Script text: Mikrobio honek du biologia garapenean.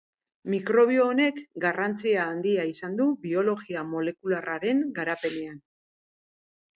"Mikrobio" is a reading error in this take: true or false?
false